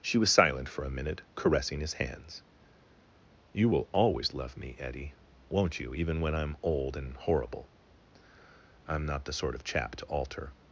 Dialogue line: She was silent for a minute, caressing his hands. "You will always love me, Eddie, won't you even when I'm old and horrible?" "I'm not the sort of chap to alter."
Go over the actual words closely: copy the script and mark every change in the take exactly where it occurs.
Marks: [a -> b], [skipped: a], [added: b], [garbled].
She was silent for a minute, caressing his hands. "You will always love me, Eddie, won't you even when I'm old and horrible?" "I'm not the sort of chap to alter."